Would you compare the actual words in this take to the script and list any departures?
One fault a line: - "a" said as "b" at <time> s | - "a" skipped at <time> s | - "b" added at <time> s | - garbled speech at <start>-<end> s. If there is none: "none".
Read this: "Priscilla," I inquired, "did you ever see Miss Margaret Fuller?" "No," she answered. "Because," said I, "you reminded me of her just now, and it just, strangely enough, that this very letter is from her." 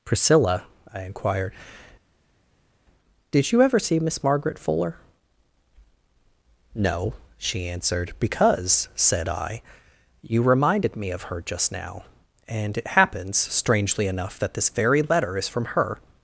- "just" said as "happens" at 12.9 s